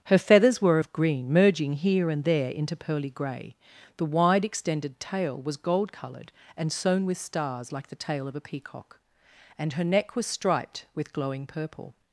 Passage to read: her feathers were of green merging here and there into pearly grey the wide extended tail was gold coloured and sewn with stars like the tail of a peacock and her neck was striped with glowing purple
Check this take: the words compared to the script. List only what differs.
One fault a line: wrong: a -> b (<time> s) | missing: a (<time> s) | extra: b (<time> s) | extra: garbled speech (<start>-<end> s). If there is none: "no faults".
no faults